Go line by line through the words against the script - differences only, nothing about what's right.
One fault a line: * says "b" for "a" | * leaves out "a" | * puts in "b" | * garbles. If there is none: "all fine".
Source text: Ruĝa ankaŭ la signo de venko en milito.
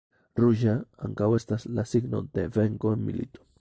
* puts in "estas"